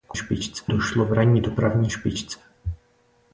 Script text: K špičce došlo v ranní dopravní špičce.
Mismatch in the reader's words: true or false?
false